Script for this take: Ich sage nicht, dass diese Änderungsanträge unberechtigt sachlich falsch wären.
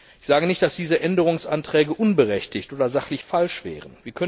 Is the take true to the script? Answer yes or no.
no